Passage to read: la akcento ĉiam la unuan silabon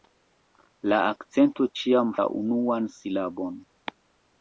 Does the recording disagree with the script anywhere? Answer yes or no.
no